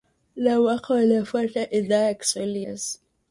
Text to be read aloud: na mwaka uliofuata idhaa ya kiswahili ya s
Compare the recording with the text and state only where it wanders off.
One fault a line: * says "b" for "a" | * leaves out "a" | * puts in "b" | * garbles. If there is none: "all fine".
* leaves out "ya"